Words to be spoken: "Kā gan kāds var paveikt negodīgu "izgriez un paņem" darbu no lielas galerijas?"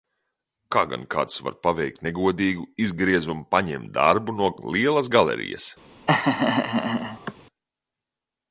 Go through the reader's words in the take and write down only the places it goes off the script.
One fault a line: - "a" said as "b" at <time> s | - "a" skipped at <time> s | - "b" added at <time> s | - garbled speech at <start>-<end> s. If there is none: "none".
none